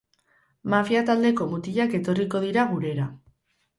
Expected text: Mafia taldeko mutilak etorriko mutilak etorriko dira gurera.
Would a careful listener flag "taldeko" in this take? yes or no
no